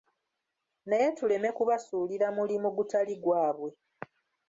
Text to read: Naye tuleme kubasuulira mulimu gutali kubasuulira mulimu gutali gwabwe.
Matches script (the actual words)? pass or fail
fail